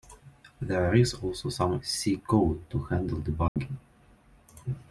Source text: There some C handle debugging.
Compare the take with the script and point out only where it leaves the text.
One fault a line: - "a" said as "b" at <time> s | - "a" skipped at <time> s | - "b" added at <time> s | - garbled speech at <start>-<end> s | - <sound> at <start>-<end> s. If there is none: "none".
- "is also" added at 0.9 s
- "code to" added at 2.2 s
- dropout at 3.5-3.6 s